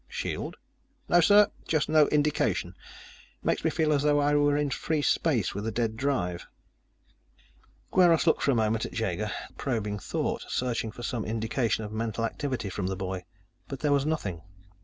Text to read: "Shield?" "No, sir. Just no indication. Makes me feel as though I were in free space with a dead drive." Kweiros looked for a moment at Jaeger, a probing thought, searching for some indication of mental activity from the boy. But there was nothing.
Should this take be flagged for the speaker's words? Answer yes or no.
no